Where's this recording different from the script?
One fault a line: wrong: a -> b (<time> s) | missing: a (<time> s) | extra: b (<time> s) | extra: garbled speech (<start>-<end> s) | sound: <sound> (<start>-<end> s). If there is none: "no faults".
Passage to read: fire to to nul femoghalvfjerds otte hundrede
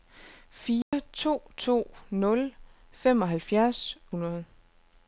sound: dropout (0.8-0.9 s)
missing: otte (4.0 s)